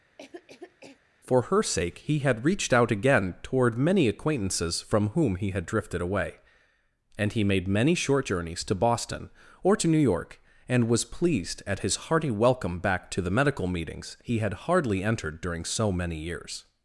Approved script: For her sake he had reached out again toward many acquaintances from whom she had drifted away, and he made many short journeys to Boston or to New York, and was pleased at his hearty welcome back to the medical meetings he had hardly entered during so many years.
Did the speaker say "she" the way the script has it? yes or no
no